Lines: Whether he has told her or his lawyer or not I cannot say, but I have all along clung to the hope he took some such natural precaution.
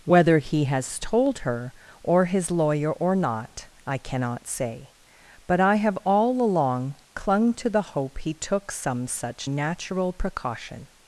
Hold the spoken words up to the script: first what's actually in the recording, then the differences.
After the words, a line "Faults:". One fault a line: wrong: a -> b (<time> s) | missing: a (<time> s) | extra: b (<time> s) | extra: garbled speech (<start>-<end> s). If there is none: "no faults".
Whether he has told her or his lawyer or not I cannot say, but I have all along clung to the hope he took some such natural precaution.
Faults:
no faults